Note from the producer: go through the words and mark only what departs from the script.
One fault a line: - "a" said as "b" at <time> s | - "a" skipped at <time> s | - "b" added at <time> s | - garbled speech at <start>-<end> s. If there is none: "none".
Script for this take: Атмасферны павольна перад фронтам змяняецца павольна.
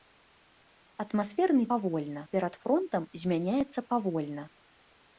none